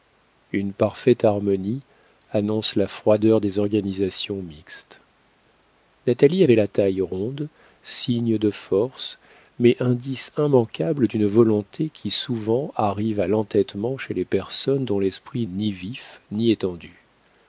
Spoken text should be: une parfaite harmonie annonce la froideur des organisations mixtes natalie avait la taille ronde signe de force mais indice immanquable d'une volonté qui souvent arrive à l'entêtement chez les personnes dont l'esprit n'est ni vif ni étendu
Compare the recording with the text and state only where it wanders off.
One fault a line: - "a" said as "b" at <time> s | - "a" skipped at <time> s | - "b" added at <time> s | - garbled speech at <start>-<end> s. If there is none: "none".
- "n'est" skipped at 15.5 s